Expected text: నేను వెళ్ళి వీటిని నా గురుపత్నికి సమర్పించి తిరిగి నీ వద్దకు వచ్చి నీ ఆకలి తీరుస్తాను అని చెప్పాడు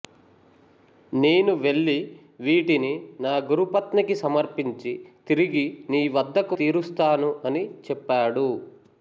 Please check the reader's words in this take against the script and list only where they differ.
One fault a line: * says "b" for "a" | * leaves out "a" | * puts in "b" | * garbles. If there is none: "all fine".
* leaves out "వచ్చి నీ ఆకలి"